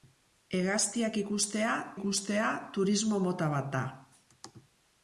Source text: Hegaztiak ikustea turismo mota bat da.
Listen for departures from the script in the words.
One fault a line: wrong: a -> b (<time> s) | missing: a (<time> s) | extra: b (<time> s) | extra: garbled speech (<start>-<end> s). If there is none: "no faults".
extra: ikustea (1.9 s)